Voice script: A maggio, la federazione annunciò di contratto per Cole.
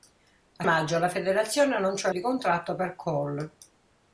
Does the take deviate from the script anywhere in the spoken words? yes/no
no